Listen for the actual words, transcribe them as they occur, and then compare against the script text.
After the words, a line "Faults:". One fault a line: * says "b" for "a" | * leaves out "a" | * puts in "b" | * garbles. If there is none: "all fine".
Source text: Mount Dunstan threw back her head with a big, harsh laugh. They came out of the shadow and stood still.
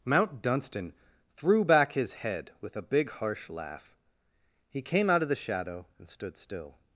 Mount Dunstan threw back his head with a big, harsh laugh. He came out of the shadow and stood still.
Faults:
* says "his" for "her"
* says "He" for "They"